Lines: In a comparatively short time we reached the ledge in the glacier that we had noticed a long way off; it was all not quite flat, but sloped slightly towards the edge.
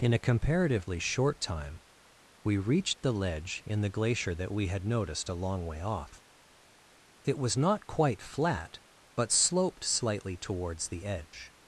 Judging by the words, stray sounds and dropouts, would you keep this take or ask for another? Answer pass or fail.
fail